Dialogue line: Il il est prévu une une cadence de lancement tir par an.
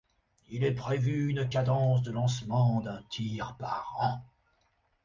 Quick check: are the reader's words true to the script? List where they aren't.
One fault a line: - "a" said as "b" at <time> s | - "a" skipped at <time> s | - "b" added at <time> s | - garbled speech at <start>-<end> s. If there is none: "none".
- "il" skipped at 0.6 s
- "une" skipped at 1.5 s
- "d'un" added at 2.8 s